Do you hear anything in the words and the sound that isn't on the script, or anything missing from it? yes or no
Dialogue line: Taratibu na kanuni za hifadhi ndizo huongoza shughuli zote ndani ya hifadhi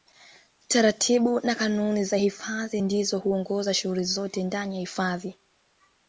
no